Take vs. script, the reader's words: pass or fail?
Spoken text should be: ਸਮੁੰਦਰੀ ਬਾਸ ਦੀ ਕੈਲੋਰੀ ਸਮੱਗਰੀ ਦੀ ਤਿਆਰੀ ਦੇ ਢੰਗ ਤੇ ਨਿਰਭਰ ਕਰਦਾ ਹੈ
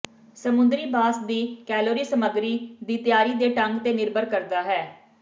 pass